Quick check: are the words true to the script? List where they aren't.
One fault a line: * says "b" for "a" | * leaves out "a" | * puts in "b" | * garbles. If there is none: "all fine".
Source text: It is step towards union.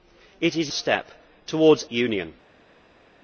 all fine